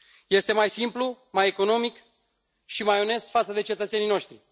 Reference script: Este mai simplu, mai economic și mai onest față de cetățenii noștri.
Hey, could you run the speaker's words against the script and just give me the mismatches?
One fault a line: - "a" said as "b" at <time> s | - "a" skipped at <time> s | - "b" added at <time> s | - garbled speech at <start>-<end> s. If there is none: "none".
none